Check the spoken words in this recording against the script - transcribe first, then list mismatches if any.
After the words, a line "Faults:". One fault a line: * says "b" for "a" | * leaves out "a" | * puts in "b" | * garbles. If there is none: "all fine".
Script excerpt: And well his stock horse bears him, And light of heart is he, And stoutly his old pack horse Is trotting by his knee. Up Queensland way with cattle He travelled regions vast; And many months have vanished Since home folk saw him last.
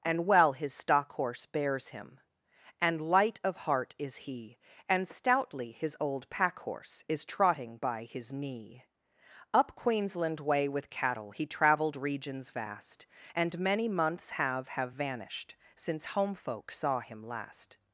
And well his stock horse bears him, And light of heart is he, And stoutly his old pack horse Is trotting by his knee. Up Queensland way with cattle He travelled regions vast; And many months have have vanished Since home folk saw him last.
Faults:
* puts in "have"